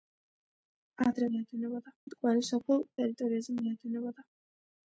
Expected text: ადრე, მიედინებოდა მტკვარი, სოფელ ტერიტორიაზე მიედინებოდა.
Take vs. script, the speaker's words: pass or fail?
pass